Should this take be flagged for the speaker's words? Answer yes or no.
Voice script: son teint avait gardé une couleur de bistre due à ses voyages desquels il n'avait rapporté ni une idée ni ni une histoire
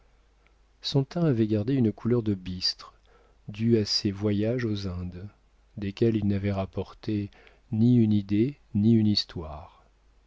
yes